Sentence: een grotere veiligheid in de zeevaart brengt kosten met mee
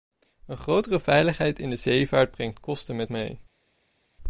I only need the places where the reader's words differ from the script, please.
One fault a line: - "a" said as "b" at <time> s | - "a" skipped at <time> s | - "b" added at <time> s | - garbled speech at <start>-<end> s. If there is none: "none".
none